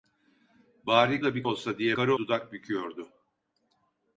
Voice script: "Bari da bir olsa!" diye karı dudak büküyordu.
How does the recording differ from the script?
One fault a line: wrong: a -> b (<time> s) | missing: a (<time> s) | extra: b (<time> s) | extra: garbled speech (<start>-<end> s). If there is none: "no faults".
no faults